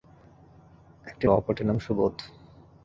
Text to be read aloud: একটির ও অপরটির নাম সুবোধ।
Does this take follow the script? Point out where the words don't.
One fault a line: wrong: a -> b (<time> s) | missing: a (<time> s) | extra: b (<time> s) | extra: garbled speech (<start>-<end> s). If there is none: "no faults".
no faults